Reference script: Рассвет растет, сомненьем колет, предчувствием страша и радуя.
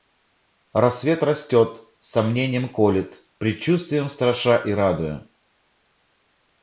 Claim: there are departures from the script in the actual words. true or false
false